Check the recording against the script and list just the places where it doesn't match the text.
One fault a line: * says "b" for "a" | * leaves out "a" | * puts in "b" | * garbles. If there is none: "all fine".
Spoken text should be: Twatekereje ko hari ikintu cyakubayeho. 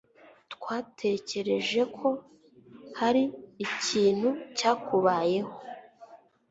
all fine